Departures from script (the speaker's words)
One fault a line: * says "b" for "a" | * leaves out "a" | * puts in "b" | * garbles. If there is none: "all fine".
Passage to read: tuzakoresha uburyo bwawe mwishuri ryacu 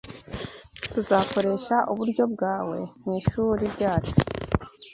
all fine